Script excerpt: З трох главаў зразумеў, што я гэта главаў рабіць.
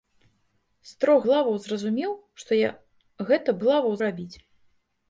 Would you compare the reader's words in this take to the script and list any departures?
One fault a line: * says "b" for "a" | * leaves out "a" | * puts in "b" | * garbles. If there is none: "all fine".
all fine